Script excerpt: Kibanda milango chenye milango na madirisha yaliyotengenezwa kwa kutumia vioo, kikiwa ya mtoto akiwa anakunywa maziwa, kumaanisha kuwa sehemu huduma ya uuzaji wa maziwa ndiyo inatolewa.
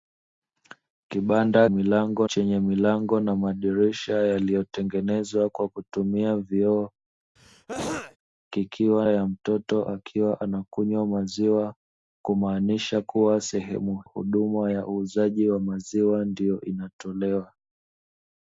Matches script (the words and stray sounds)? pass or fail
fail